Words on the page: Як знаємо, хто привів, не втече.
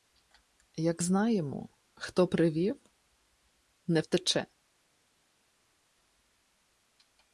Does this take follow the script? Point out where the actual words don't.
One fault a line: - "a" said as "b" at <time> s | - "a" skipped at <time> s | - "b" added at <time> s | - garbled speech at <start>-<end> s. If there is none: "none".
none